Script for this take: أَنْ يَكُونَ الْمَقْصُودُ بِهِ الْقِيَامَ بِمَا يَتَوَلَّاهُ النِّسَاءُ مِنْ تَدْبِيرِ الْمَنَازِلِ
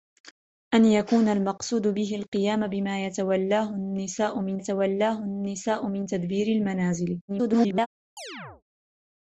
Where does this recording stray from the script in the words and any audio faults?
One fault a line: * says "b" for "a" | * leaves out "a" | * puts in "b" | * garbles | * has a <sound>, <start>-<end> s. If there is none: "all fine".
* puts in "يَتَوَلَّاهُ النِّسَاءُ مِنْ"
* garbles
* has a chirp, 8.2-8.6 s